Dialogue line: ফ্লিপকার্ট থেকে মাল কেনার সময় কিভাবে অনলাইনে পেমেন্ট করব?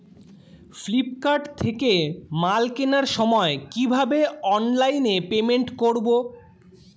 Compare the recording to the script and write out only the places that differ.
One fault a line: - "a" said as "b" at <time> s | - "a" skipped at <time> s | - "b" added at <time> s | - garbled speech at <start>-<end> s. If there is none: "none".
none